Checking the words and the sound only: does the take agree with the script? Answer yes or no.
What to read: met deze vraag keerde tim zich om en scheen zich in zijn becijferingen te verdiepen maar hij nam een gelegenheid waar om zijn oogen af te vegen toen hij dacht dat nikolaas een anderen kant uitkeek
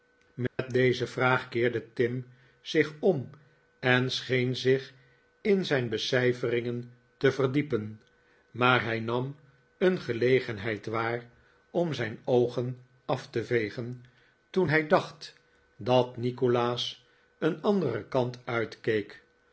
no